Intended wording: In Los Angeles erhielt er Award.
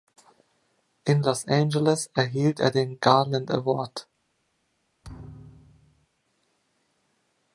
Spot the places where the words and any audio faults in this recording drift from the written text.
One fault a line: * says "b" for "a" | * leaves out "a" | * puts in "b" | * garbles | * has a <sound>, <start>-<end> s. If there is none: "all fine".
* puts in "den Garland"
* has a thud, 5.0-6.1 s